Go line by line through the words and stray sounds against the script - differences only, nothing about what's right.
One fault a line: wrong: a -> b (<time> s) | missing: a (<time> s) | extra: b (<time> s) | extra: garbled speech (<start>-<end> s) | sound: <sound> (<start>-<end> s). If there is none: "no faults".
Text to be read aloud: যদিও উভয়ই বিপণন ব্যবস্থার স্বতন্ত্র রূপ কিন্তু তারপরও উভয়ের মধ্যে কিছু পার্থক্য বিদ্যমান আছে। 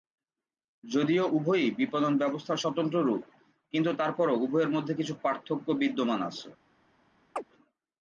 sound: chirp (7.4-7.4 s)